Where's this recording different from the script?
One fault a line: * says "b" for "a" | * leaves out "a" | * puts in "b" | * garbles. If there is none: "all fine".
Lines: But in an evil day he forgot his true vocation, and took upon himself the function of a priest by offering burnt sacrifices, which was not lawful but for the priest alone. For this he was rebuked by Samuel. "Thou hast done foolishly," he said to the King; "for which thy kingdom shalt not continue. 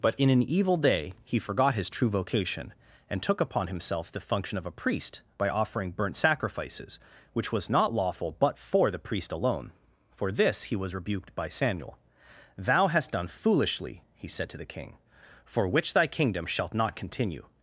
all fine